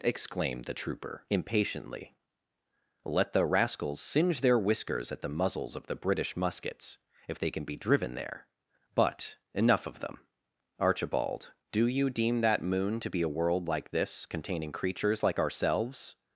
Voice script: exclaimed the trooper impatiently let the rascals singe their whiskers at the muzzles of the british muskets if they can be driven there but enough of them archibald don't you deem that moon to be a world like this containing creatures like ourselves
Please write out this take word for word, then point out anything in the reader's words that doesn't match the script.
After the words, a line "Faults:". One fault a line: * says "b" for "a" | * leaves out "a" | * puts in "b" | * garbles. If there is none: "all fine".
exclaimed the trooper impatiently let the rascals singe their whiskers at the muzzles of the british muskets if they can be driven there but enough of them archibald do you deem that moon to be a world like this containing creatures like ourselves
Faults:
* says "do" for "don't"